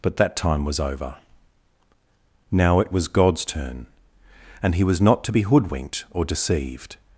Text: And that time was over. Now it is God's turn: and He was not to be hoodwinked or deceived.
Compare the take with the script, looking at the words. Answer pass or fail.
fail